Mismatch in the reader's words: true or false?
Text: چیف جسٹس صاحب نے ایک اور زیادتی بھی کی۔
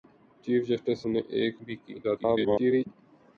true